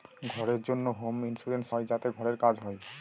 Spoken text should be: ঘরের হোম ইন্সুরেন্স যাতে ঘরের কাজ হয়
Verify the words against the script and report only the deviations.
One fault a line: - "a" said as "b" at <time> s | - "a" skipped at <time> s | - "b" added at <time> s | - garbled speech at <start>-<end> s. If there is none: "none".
- "জন্য" added at 0.7 s
- "হয়" added at 1.7 s